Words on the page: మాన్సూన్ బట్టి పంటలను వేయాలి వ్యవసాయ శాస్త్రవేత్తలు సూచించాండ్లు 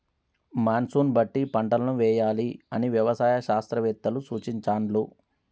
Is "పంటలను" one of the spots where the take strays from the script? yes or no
no